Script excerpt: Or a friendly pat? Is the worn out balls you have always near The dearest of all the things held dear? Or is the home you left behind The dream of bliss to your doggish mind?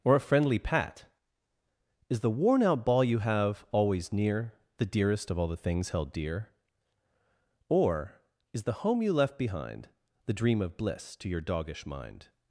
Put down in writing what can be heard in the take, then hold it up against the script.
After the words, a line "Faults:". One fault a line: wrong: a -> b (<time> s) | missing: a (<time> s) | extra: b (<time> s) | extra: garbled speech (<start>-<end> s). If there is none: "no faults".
Or a friendly pat? Is the worn out ball you have always near The dearest of all the things held dear? Or is the home you left behind The dream of bliss to your doggish mind?
Faults:
wrong: balls -> ball (2.9 s)